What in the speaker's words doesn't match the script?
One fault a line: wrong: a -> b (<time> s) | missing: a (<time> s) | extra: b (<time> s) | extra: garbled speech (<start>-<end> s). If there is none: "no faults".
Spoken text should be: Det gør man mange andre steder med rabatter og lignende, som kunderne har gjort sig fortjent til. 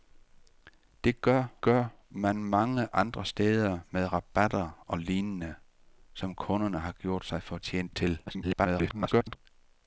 extra: gør (1.6 s)
extra: garbled speech (8.3-9.4 s)